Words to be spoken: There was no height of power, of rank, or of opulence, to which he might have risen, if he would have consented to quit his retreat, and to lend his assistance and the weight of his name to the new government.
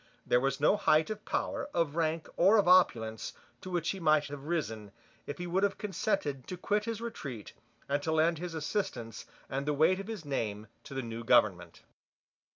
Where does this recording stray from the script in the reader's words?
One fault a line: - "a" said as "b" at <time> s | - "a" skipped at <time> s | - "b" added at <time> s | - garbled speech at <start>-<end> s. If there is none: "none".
none